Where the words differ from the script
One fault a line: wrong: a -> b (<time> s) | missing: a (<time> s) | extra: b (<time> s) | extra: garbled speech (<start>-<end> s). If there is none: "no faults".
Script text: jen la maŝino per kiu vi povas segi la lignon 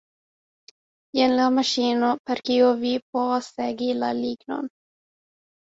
no faults